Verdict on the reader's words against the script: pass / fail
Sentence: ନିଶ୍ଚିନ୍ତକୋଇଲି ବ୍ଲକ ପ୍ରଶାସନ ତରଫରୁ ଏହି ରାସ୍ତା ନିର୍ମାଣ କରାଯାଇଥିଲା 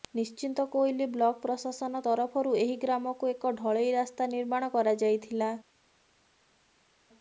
fail